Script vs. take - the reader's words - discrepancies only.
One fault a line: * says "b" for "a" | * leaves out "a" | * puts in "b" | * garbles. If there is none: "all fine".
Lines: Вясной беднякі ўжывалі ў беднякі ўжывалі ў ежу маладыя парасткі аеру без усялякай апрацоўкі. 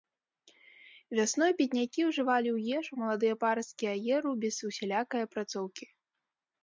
* leaves out "беднякі ўжывалі ў"